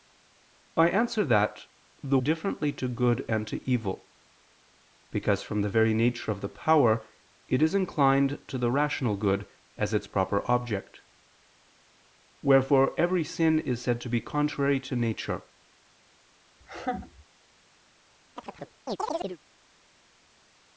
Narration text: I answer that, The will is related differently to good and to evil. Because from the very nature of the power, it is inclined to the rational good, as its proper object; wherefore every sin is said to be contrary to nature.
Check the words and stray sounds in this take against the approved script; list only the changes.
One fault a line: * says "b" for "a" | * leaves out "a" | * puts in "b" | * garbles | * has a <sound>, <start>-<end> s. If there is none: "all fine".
* leaves out "will is related"
* has a laugh, 16.6-17.3 s
* has a chirp, 18.4-19.4 s